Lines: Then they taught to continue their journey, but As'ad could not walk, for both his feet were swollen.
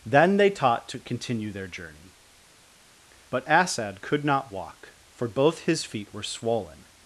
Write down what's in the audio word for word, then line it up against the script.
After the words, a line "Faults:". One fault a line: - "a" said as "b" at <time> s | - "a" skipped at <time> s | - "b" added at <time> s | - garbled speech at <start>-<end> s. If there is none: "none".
Then they taught to continue their journey, but As'ad could not walk, for both his feet were swollen.
Faults:
none